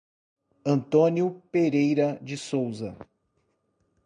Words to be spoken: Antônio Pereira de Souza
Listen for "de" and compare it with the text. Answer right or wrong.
right